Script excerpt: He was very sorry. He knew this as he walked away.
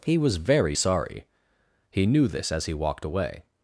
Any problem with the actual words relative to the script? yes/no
no